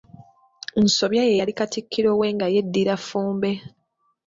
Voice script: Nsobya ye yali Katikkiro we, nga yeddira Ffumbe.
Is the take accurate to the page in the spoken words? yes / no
yes